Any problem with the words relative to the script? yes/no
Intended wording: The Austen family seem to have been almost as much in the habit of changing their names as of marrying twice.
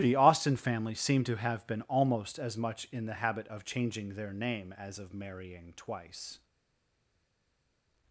yes